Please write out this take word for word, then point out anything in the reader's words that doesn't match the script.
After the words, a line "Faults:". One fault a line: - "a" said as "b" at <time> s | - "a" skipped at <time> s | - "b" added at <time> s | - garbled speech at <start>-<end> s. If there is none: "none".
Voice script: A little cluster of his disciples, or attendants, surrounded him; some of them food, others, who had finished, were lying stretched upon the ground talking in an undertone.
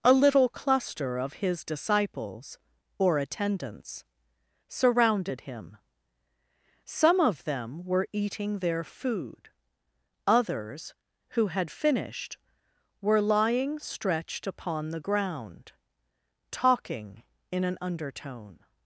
A little cluster of his disciples, or attendants, surrounded him; some of them were eating their food, others, who had finished, were lying stretched upon the ground talking in an undertone.
Faults:
- "were eating their" added at 7.8 s